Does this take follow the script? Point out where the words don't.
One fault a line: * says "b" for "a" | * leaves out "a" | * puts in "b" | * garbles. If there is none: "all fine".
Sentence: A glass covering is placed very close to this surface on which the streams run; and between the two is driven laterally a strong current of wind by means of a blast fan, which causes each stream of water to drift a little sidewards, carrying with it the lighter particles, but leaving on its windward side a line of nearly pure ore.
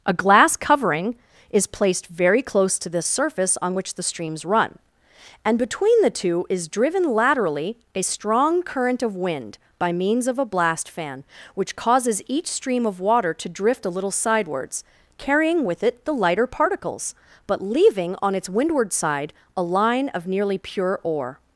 all fine